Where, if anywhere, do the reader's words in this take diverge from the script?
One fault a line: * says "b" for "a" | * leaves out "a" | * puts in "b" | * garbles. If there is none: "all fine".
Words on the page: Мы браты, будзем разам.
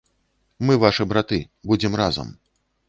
* puts in "вашы"